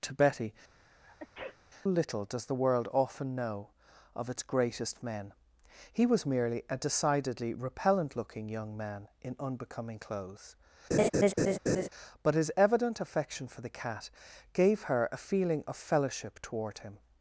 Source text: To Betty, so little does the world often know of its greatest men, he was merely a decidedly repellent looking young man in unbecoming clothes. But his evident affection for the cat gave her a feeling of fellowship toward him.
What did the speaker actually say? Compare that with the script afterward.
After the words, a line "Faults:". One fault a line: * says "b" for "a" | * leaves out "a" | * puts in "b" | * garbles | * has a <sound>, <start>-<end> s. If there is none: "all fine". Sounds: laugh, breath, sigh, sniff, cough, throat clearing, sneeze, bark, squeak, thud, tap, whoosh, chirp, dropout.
To Betty, little does the world often know of its greatest men, he was merely a decidedly repellent looking young man in unbecoming clothes. But his evident affection for the cat gave her a feeling of fellowship toward him.
Faults:
* leaves out "so"
* has a sneeze, 0.7-1.6 s
* has a laugh, 10.9-11.9 s